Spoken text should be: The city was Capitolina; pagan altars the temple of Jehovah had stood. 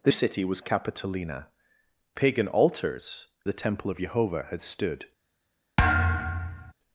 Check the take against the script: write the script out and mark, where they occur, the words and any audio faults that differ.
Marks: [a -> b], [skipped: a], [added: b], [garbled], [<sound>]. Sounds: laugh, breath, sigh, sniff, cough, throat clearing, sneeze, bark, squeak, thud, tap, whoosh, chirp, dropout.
The city was Capitolina; pagan altars the temple of Jehovah had stood. [thud]